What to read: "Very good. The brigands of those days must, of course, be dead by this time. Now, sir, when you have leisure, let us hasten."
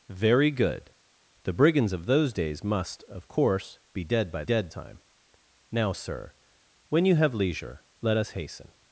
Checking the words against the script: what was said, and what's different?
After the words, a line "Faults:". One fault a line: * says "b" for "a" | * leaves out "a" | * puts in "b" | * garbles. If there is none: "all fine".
"Very good. The brigands of those days must, of course, be dead by dead time. Now, sir, when you have leisure, let us hasten."
Faults:
* says "dead" for "this"